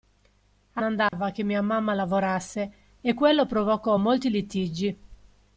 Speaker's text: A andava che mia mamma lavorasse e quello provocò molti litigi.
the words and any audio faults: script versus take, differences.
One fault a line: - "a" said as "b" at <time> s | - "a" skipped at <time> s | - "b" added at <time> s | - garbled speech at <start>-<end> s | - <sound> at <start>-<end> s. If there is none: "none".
- dropout at 1.1-1.1 s